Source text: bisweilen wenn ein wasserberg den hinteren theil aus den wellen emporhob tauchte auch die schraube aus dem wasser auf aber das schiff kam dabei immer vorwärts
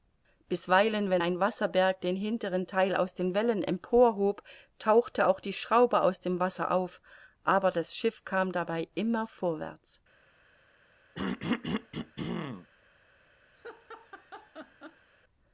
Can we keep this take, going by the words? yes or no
yes